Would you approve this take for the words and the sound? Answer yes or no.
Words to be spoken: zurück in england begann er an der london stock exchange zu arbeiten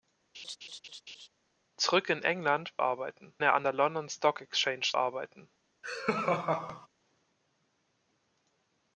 no